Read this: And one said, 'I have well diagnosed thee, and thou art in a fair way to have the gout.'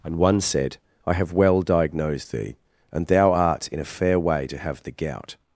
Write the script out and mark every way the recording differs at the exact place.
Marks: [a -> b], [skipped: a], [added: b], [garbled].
And one said, 'I have well diagnosed thee, and thou art in a fair way to have the gout.'